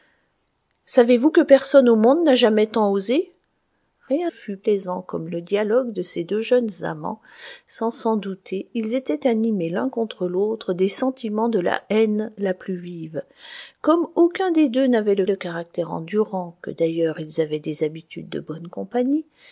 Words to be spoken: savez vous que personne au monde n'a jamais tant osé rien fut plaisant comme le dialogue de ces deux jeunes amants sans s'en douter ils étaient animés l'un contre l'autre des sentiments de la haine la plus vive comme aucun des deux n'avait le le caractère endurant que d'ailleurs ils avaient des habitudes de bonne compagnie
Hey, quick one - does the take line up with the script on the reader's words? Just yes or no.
yes